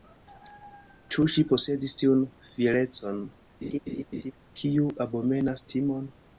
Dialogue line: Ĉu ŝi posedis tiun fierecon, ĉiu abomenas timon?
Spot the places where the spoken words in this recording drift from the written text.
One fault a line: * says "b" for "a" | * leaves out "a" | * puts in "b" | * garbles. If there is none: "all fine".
* says "kiu" for "ĉiu"